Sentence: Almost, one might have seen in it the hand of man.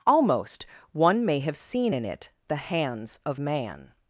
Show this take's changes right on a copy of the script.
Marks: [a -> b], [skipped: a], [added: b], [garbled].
Almost, one [might -> may] have seen in it the [hand -> hands] of man.